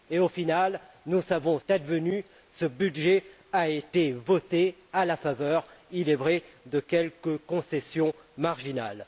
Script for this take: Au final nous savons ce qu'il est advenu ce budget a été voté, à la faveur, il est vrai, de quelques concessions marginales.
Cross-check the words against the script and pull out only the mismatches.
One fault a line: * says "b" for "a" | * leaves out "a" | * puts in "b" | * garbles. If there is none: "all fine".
* leaves out "ce qu'il est"